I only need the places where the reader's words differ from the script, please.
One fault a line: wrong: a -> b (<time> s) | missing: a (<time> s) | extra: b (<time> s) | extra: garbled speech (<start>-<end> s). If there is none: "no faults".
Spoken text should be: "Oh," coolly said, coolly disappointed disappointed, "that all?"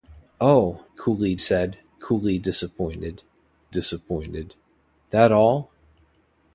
no faults